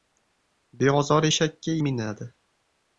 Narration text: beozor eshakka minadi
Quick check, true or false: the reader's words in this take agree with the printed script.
true